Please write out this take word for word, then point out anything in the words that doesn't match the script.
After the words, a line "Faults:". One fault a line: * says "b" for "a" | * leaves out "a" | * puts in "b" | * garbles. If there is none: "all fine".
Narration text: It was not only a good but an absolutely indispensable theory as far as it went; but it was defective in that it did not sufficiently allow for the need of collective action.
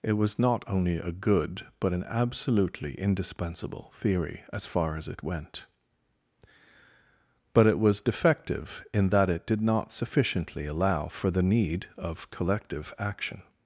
It was not only a good but an absolutely indispensable theory as far as it went; but it was defective in that it did not sufficiently allow for the need of collective action.
Faults:
all fine